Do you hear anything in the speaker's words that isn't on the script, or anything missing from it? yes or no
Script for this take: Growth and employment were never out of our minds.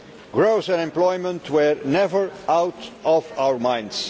no